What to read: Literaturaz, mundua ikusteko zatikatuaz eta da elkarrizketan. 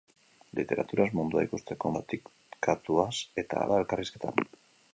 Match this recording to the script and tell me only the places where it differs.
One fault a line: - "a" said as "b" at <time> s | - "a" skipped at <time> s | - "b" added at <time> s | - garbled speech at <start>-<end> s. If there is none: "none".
none